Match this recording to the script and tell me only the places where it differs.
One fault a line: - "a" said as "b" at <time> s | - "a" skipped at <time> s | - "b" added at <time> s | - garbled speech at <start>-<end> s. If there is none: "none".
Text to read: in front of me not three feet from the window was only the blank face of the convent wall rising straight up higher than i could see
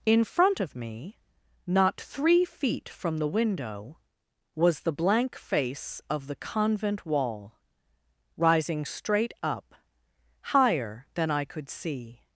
- "only" skipped at 4.8 s